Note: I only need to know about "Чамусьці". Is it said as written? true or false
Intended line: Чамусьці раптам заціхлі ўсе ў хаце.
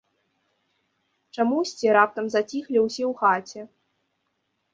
true